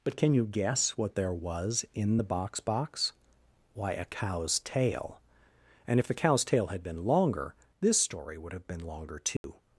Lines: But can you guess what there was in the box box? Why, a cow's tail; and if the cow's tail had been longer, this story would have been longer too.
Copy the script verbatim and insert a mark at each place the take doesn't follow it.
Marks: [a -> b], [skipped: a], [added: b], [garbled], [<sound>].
But can you guess what there was in the box box? Why, a cow's tail; and if the cow's tail had been longer, this story would have been longer too. [dropout]